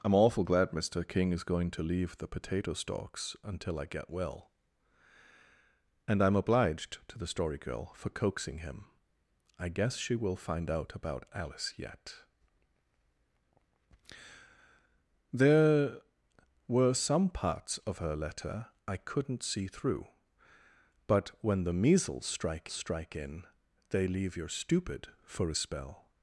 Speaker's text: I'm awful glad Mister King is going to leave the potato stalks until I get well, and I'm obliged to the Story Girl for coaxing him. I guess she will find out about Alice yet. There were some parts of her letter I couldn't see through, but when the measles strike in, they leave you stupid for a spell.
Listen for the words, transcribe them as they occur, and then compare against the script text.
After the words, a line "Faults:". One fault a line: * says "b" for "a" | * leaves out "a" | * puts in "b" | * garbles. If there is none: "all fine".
I'm awful glad Mister King is going to leave the potato stalks until I get well, and I'm obliged to the Story Girl for coaxing him. I guess she will find out about Alice yet. There were some parts of her letter I couldn't see through, but when the measles strike strike in, they leave you stupid for a spell.
Faults:
* puts in "strike"